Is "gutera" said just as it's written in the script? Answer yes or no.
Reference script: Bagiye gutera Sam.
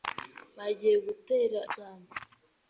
yes